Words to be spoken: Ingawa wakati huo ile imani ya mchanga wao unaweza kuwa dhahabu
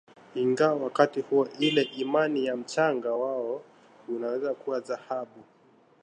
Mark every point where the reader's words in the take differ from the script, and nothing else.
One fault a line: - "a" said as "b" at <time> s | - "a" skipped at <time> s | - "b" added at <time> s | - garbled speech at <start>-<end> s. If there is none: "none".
none